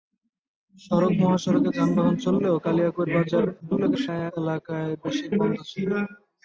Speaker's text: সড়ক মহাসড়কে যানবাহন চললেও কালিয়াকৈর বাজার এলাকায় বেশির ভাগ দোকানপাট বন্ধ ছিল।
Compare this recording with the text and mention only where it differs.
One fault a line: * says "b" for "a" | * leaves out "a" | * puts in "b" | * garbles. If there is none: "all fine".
* garbles
* leaves out "ভাগ দোকানপাট"